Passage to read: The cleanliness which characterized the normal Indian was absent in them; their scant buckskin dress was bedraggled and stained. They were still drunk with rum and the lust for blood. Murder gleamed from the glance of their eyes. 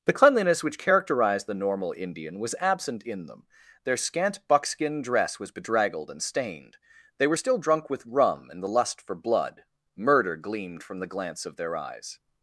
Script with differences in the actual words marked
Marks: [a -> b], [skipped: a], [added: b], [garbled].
The cleanliness which characterized the normal Indian was absent in them; their scant buckskin dress was bedraggled and stained. They were still drunk with rum and the lust for blood. Murder gleamed from the glance of their eyes.